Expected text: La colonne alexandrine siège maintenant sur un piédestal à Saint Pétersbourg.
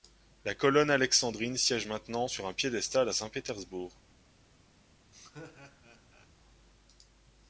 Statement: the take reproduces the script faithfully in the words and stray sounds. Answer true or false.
false